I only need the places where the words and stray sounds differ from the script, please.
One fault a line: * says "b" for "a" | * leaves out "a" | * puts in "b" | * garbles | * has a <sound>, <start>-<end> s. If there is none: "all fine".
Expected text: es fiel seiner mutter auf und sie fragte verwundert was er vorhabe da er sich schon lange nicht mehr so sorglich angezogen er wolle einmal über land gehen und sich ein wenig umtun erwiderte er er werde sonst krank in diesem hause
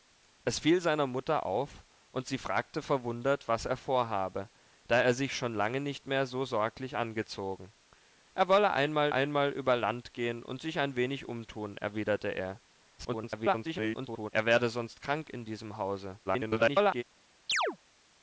* puts in "einmal"
* garbles
* garbles
* has a chirp, 17.5-17.8 s